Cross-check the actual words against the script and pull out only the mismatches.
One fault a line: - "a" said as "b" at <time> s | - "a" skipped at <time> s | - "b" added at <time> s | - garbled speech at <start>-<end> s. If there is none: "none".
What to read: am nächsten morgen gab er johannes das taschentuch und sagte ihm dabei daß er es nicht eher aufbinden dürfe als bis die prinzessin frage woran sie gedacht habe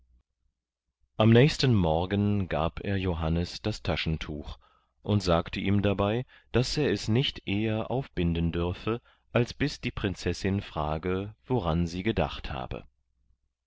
none